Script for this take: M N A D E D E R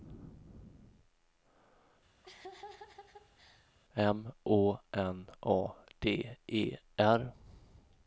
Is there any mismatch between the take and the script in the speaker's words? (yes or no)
yes